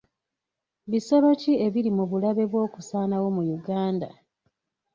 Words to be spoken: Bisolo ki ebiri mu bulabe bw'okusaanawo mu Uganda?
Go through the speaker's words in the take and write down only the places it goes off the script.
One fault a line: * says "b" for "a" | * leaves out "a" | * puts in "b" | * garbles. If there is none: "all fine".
all fine